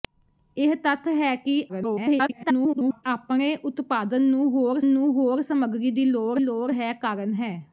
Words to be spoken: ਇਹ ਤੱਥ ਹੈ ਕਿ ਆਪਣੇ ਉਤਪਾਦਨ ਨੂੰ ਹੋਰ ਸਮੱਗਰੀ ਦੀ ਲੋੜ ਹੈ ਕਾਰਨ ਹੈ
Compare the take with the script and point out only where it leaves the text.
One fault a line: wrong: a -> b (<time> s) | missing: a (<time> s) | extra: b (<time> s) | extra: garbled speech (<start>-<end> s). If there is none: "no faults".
extra: garbled speech (1.7-3.0 s)
extra: ਨੂੰ ਹੋਰ (4.9 s)
extra: ਲੋੜ (6.4 s)